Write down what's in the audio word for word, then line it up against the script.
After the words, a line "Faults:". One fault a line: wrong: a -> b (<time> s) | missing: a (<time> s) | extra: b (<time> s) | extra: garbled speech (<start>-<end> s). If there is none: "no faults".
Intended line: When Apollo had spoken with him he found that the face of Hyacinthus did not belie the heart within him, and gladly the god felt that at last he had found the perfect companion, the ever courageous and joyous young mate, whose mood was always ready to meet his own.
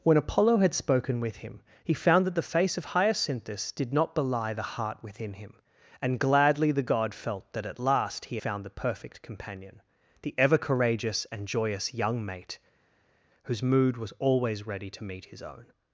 When Apollo had spoken with him he found that the face of Hyacinthus did not belie the heart within him, and gladly the god felt that at last he found the perfect companion, the ever courageous and joyous young mate, whose mood was always ready to meet his own.
Faults:
missing: had (8.4 s)